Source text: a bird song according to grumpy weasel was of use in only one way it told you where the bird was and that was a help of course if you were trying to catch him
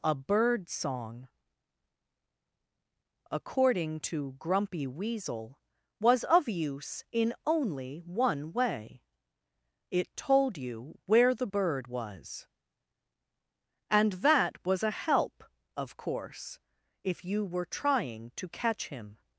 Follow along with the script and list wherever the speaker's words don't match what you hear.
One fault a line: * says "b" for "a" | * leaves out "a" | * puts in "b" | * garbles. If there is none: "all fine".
all fine